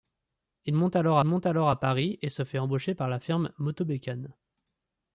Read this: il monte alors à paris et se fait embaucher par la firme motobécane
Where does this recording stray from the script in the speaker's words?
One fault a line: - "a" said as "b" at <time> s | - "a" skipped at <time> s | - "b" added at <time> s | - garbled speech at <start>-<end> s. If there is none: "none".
- "monte alors" added at 1.2 s